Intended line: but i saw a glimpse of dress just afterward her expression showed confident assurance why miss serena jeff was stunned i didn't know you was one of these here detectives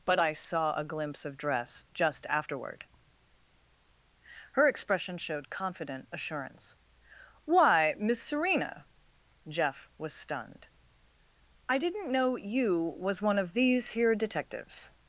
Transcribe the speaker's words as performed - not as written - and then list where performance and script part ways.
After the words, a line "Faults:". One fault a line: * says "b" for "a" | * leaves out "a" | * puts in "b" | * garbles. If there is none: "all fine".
but i saw a glimpse of dress just afterward her expression showed confident assurance why miss serena jeff was stunned i didn't know you was one of these here detectives
Faults:
all fine